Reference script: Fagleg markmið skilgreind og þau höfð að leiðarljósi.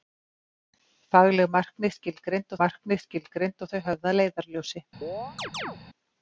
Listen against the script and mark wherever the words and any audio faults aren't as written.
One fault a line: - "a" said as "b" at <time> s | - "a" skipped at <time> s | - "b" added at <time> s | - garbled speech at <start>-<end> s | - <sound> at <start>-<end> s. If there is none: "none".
- "markmið skilgreind" added at 2.6 s
- chirp at 5.0-5.8 s